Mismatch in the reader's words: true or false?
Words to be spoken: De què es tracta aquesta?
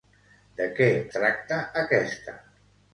true